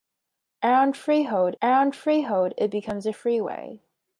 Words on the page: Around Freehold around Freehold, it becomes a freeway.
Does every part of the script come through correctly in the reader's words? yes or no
yes